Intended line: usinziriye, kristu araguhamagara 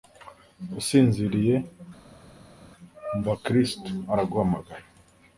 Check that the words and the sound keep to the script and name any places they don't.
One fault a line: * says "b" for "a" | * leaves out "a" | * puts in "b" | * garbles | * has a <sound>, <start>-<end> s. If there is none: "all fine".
* puts in "umva"